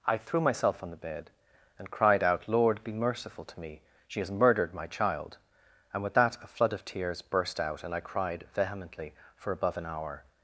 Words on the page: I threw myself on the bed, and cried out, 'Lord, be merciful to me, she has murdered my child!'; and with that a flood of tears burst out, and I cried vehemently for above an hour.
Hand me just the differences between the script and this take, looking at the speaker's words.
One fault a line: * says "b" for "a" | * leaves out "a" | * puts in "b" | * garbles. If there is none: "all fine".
all fine